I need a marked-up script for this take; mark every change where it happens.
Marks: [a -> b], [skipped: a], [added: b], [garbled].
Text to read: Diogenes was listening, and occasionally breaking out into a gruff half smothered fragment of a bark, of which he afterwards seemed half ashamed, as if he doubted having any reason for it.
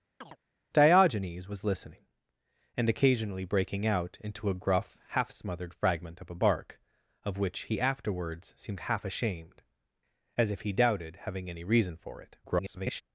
Diogenes was listening, and occasionally breaking out into a gruff half smothered fragment of a bark, of which he afterwards seemed half ashamed, as if he doubted having any reason for it. [garbled]